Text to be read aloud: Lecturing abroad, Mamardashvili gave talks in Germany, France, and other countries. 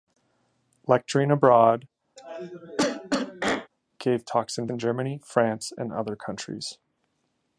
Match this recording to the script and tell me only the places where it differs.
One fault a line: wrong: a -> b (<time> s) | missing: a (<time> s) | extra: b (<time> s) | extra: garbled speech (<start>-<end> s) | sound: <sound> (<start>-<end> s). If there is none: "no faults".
missing: Mamardashvili (1.9 s)
sound: cough (2.2-3.7 s)
extra: in (4.7 s)